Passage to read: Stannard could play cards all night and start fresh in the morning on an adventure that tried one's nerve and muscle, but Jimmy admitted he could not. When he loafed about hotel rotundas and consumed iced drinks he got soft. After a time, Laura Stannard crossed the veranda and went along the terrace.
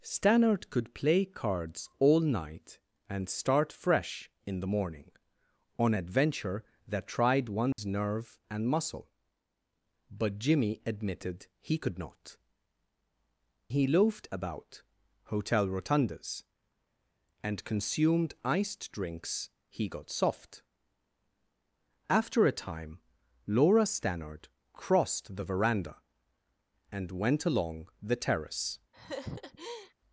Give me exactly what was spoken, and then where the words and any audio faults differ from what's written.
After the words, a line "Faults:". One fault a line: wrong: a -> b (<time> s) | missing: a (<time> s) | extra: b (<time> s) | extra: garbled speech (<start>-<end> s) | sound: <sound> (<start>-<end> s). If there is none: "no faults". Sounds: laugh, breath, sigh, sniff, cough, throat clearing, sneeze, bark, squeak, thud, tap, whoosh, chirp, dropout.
Stannard could play cards all night and start fresh in the morning on adventure that tried one's nerve and muscle, but Jimmy admitted he could not. He loafed about hotel rotundas and consumed iced drinks he got soft. After a time, Laura Stannard crossed the veranda and went along the terrace.
Faults:
missing: an (5.9 s)
sound: dropout (7.7-7.8 s)
missing: When (12.4 s)
sound: laugh (28.9-29.9 s)